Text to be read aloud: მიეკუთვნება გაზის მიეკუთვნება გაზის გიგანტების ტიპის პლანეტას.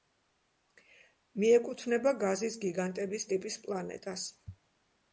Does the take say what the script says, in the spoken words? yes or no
no